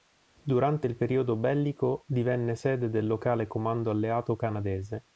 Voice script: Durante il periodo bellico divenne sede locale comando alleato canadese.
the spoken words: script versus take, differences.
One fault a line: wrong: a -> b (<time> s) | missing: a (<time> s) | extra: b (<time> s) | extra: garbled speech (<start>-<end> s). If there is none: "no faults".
extra: del (2.9 s)